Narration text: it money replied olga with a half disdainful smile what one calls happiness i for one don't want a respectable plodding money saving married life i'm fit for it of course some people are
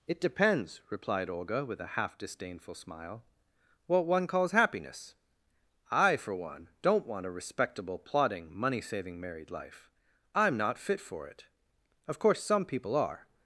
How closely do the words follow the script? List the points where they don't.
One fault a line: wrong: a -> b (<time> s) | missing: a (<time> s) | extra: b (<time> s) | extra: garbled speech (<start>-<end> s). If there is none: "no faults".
wrong: money -> depends (0.2 s)
extra: not (10.6 s)